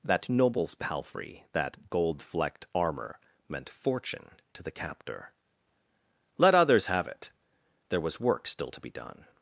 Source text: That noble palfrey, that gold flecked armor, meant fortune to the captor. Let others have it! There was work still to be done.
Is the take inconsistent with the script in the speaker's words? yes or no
yes